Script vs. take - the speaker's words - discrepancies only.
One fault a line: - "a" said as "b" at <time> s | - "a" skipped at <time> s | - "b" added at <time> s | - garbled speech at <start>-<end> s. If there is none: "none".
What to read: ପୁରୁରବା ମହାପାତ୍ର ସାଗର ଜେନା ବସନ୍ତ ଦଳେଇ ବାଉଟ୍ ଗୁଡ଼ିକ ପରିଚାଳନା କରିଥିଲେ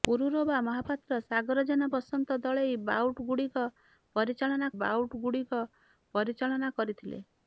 - "ବାଉଟ୍ ଗୁଡ଼ିକ ପରିଚାଳନା" added at 4.8 s